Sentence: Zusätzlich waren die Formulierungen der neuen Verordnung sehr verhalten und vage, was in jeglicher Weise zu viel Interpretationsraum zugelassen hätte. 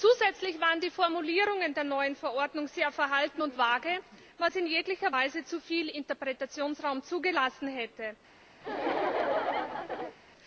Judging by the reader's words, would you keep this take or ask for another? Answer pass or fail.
pass